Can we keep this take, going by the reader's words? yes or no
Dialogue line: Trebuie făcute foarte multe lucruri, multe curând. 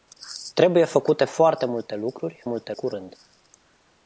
yes